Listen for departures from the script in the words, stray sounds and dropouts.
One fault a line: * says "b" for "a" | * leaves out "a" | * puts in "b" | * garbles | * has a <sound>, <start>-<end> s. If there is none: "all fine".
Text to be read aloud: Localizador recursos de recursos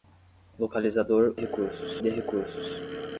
all fine